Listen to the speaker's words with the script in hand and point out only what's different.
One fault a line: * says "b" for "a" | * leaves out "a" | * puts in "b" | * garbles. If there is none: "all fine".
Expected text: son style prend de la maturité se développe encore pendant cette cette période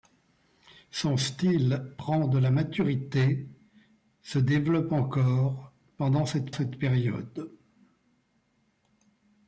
all fine